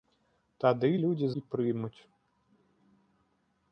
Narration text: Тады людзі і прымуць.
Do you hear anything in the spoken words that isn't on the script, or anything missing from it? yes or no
no